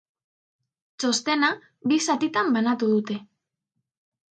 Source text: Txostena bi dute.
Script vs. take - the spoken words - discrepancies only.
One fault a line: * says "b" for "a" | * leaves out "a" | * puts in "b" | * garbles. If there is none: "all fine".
* puts in "zatitan banatu"